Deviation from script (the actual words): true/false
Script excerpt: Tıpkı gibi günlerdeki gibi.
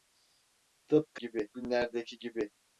false